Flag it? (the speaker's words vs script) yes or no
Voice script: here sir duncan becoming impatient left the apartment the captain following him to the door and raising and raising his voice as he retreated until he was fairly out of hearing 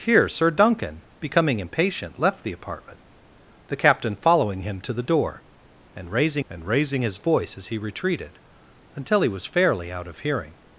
no